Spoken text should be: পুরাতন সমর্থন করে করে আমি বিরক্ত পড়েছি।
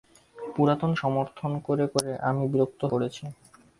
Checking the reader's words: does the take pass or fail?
pass